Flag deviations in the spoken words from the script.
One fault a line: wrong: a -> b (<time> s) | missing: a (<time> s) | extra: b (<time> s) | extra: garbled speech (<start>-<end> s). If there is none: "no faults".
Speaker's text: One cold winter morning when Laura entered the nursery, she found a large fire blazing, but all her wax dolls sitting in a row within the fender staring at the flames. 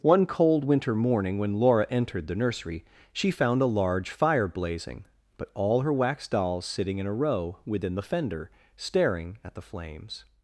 no faults